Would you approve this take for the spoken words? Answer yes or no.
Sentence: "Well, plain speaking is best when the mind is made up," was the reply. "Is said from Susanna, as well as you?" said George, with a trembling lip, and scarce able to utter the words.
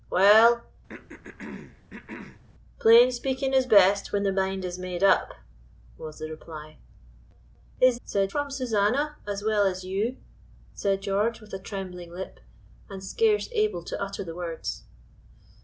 yes